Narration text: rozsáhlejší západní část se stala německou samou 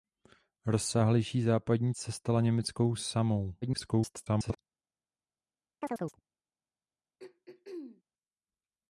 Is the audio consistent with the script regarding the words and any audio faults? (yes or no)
no